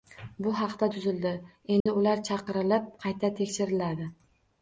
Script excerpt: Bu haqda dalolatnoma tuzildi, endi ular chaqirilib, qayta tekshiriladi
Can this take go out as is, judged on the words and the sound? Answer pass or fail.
fail